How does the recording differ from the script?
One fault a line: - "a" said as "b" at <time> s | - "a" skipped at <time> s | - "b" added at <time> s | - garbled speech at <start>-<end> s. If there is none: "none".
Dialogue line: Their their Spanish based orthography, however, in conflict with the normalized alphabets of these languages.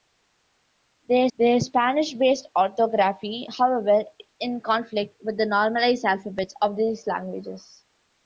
none